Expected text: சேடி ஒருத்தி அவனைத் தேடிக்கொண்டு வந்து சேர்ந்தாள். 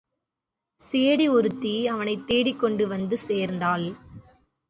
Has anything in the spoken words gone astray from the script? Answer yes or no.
no